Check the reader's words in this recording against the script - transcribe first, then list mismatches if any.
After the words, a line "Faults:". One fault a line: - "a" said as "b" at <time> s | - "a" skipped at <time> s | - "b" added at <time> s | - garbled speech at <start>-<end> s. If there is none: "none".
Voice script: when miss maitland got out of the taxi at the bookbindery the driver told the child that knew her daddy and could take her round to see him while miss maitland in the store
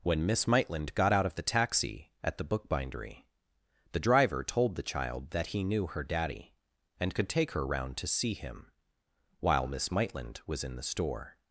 when miss maitland got out of the taxi at the bookbindery the driver told the child that he knew her daddy and could take her round to see him while miss maitland was in the store
Faults:
- "he" added at 5.5 s
- "was" added at 10.4 s